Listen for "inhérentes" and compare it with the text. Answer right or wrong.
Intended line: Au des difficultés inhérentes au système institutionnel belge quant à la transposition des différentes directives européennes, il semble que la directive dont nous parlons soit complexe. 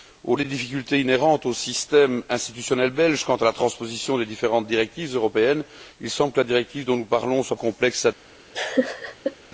right